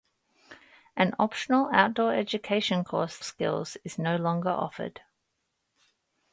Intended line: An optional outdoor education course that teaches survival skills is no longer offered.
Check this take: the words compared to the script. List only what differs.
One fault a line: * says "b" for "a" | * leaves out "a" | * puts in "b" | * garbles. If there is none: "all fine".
* leaves out "that teaches survival"